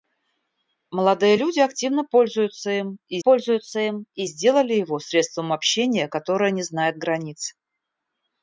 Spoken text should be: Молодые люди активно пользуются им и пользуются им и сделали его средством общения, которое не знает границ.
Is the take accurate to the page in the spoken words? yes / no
yes